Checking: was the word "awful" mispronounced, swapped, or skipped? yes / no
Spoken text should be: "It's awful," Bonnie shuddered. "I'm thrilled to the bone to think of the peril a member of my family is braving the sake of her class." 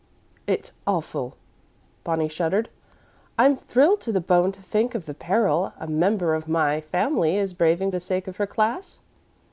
no